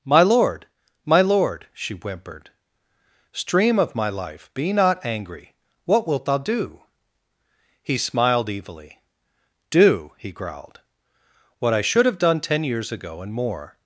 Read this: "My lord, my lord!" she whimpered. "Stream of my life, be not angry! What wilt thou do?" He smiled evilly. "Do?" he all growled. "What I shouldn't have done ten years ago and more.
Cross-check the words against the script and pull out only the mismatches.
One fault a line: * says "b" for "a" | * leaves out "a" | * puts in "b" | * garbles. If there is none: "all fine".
* leaves out "all"
* says "should" for "shouldn't"